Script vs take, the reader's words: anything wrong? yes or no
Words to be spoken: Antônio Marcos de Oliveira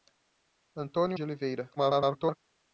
yes